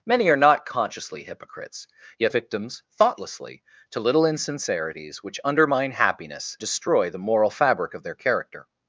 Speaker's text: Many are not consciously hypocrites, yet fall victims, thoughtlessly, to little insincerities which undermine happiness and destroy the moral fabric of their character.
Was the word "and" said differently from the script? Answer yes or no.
yes